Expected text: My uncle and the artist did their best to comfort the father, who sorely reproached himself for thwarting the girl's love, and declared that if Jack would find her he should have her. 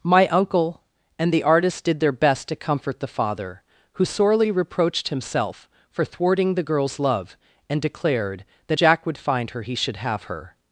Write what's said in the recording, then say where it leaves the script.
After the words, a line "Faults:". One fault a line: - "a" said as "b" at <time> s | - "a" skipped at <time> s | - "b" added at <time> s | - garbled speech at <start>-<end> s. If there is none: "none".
My uncle and the artist did their best to comfort the father, who sorely reproached himself for thwarting the girl's love, and declared that Jack would find her he should have her.
Faults:
- "if" skipped at 8.8 s